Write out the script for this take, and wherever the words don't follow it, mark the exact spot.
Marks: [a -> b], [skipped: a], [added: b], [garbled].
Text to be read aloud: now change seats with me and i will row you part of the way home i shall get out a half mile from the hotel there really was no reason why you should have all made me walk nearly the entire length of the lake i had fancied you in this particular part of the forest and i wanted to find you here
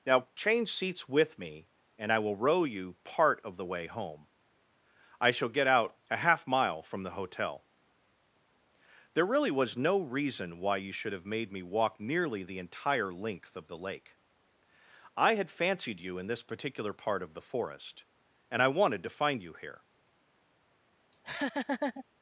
now change seats with me and i will row you part of the way home i shall get out a half mile from the hotel there really was no reason why you should have [skipped: all] made me walk nearly the entire length of the lake i had fancied you in this particular part of the forest and i wanted to find you here